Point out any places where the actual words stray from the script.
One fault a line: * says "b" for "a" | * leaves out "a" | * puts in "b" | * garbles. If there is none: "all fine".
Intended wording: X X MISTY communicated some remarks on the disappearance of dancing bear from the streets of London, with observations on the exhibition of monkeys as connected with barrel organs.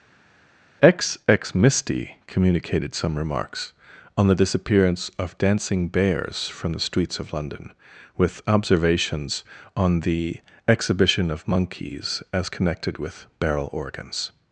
* says "bears" for "bear"